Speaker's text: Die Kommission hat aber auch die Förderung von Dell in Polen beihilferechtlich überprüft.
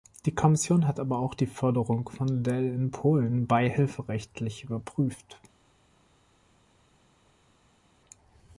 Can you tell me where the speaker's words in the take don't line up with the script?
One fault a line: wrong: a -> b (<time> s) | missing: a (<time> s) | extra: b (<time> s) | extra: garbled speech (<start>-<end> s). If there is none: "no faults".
no faults